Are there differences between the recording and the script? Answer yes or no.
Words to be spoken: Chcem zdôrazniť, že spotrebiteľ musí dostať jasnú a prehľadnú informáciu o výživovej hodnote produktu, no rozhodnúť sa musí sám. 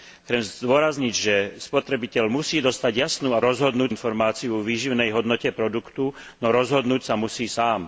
yes